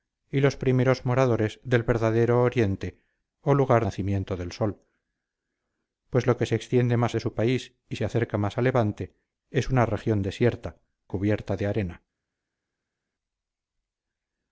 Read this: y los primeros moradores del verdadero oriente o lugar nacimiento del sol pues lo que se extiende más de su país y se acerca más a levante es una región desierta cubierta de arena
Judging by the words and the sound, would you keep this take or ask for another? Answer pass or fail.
pass